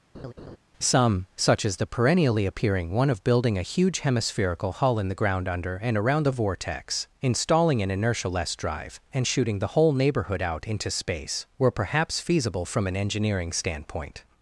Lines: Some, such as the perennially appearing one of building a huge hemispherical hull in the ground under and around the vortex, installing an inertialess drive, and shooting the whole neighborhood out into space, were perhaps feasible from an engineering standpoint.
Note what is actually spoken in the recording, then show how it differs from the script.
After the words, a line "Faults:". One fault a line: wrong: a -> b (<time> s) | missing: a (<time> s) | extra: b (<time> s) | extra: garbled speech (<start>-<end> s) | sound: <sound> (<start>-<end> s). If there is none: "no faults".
Some, such as the perennially appearing one of building a huge hemispherical hull in the ground under and around the vortex, installing an inertialess drive, and shooting the whole neighborhood out into space, were perhaps feasible from an engineering standpoint.
Faults:
sound: laugh (0.1-0.6 s)